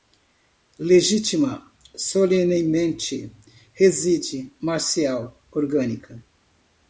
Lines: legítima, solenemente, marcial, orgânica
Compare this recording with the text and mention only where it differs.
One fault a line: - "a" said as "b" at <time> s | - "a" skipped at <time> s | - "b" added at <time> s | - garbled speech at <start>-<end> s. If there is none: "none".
- "reside" added at 3.7 s